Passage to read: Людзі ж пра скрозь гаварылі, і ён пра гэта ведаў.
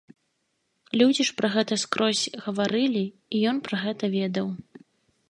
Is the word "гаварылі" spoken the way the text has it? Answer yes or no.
yes